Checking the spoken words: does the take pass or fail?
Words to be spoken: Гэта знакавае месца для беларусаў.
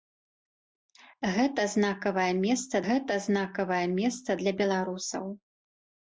fail